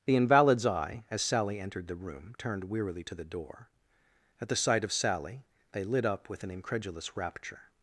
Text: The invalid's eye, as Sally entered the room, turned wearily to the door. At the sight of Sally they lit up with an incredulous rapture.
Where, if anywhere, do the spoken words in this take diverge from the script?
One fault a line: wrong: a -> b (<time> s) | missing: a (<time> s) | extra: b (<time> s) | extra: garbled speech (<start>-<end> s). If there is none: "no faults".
no faults